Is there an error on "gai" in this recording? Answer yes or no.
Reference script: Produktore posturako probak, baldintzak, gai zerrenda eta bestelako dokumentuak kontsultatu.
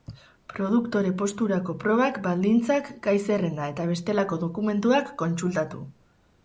no